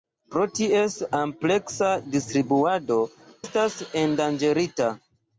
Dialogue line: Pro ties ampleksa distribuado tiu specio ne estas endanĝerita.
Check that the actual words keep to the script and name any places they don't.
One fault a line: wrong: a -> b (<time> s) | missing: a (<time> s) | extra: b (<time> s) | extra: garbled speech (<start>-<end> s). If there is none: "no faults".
missing: tiu specio ne (3.0 s)